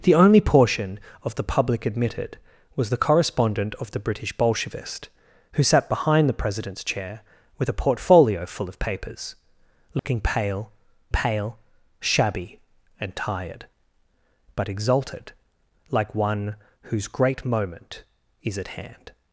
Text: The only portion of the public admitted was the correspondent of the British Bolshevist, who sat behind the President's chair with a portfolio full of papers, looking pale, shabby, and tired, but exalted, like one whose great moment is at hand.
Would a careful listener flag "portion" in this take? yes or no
no